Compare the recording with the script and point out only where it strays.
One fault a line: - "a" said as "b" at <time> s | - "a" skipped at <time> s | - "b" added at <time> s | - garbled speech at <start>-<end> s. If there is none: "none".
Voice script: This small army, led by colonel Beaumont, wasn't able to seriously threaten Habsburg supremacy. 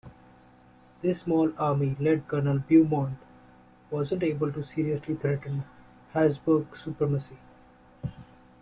- "by" skipped at 2.2 s